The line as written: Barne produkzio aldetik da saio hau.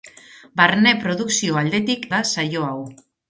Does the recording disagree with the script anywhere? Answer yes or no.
no